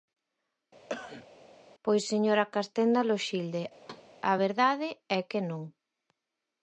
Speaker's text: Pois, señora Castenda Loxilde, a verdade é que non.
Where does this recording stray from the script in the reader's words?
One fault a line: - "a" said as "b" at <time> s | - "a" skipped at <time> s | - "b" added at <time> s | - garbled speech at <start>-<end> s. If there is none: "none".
none